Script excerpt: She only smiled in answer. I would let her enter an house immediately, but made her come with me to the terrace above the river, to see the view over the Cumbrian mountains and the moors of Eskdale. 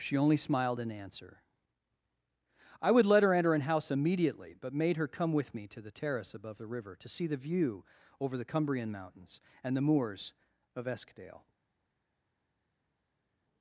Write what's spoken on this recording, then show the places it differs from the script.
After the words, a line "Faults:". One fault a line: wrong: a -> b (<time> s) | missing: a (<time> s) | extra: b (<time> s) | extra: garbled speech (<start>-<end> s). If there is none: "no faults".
She only smiled in answer. I would let her enter an house immediately, but made her come with me to the terrace above the river, to see the view over the Cumbrian mountains and the moors of Eskdale.
Faults:
no faults